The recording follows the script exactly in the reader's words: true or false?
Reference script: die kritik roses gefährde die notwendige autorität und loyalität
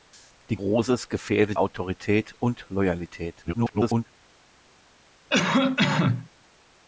false